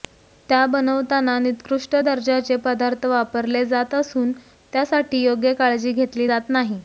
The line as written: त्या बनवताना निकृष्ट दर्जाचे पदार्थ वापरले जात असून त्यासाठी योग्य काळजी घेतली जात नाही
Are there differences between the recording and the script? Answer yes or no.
no